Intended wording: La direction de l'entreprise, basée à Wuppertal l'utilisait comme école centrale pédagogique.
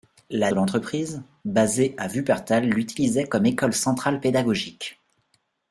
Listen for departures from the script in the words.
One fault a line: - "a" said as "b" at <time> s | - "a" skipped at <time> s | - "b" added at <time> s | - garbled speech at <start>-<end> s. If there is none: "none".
- "direction" skipped at 0.5 s